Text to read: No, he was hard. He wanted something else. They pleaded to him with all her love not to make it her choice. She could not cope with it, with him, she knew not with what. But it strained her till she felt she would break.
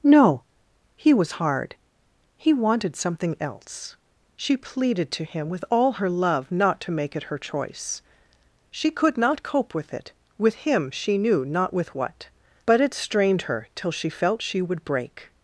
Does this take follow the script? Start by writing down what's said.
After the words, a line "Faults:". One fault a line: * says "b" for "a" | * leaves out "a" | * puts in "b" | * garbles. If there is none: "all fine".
No, he was hard. He wanted something else. She pleaded to him with all her love not to make it her choice. She could not cope with it, with him, she knew not with what. But it strained her till she felt she would break.
Faults:
* says "She" for "They"